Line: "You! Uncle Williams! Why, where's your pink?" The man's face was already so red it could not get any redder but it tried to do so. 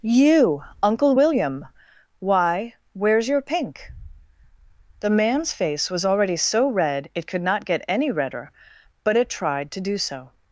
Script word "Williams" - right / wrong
wrong